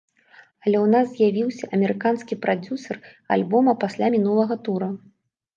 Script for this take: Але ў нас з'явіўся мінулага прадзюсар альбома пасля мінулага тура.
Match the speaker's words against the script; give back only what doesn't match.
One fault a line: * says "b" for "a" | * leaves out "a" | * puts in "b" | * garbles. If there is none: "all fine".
* says "амерыканскі" for "мінулага"